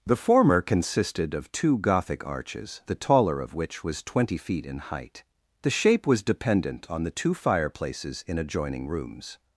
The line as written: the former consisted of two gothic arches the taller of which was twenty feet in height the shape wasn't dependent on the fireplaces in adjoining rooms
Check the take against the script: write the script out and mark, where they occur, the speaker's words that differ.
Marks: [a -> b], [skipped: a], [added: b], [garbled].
the former consisted of two gothic arches the taller of which was twenty feet in height the shape [wasn't -> was] dependent on the [added: two] fireplaces in adjoining rooms